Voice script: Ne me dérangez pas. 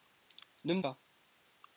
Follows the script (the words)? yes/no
no